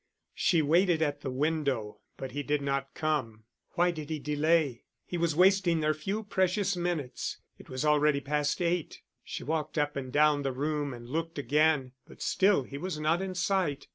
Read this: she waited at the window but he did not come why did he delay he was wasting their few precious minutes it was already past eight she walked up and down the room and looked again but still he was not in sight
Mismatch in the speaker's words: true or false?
false